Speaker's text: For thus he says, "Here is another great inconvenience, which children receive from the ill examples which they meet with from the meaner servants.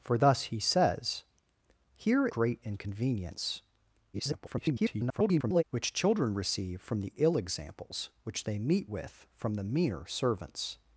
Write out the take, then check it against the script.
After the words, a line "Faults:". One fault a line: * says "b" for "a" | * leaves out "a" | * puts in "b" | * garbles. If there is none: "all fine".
For thus he says, "Here great inconvenience, [garbled] which children receive from the ill examples which they meet with from the meaner servants.
Faults:
* leaves out "is another"
* garbles